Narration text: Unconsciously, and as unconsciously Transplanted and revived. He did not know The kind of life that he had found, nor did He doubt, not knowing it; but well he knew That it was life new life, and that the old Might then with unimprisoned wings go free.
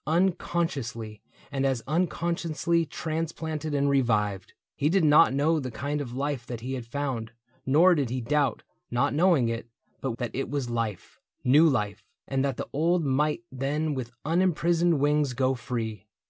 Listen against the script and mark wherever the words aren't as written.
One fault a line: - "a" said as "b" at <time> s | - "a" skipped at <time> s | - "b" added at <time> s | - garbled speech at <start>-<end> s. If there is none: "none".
- "well he knew" skipped at 10.1 s